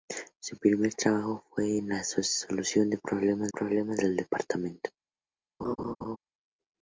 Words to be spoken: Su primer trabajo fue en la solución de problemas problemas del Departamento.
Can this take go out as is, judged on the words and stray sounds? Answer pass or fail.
fail